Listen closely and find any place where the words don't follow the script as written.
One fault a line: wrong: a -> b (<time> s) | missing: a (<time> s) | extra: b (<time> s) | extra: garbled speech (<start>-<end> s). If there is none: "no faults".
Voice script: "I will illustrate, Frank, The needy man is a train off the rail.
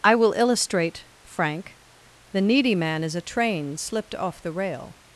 extra: slipped (3.8 s)